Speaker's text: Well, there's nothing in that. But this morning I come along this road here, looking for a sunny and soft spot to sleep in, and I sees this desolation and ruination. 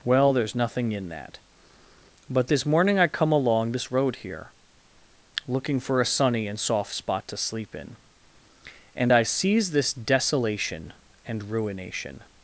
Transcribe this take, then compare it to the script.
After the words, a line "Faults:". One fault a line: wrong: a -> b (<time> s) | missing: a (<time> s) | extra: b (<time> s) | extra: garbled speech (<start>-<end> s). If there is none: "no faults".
Well, there's nothing in that. But this morning I come along this road here, looking for a sunny and soft spot to sleep in, and I sees this desolation and ruination.
Faults:
no faults